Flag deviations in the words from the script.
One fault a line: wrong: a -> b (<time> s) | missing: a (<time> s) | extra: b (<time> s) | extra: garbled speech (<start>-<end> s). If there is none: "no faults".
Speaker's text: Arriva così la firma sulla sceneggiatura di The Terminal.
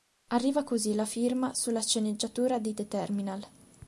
no faults